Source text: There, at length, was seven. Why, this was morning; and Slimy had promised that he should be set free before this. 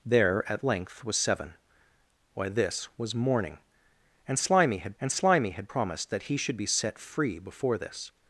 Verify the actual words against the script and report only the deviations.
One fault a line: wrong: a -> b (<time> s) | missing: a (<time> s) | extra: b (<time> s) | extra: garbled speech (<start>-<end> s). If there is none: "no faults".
extra: and Slimy had (5.0 s)